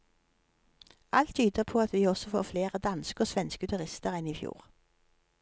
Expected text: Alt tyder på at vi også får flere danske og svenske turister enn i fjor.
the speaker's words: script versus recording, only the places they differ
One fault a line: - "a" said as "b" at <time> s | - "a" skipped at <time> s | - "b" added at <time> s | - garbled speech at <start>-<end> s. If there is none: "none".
none